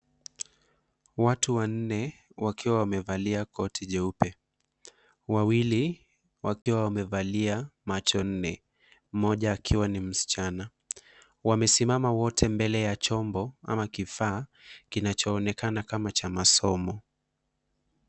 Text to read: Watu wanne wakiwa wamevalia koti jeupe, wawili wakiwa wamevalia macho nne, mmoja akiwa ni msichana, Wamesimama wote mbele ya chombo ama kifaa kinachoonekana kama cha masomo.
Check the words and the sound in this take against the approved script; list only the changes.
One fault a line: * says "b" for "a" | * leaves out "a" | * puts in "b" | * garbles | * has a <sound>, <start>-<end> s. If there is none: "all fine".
* has a dropout, 6.6-6.7 s